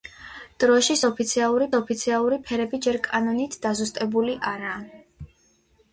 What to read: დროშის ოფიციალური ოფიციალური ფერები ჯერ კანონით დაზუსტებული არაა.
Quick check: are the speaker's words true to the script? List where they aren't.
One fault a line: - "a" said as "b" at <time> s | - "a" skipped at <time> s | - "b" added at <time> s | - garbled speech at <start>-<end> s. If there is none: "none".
none